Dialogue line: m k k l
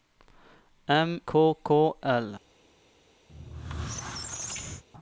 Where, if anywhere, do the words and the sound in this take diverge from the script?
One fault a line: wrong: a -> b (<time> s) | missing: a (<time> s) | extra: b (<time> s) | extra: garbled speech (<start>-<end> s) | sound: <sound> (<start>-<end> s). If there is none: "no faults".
sound: squeak (3.3-4.8 s)